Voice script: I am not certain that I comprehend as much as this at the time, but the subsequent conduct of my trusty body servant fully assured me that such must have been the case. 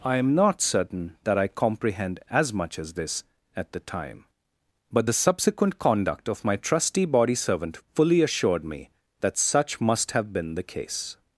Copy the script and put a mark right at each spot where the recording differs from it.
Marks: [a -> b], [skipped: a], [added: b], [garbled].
I am not certain that I comprehend as much as this at the time, but the subsequent conduct of my trusty body servant fully assured me that such must have been the case.